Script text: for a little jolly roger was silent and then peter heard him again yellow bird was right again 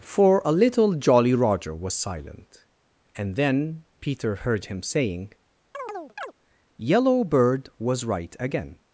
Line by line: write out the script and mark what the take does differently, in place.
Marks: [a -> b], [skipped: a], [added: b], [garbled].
for a little jolly roger was silent and then peter heard him [again -> saying] yellow bird was right again